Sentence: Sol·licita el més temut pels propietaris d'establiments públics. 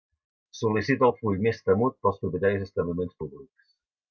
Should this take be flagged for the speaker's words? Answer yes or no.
yes